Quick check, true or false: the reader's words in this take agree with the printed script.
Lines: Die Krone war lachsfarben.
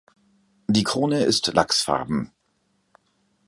false